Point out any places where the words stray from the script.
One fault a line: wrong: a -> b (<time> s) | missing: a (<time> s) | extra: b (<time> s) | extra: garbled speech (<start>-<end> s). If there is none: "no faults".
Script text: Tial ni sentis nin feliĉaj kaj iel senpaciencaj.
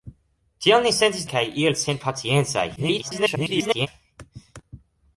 missing: nin feliĉaj (1.3 s)
extra: garbled speech (2.8-3.9 s)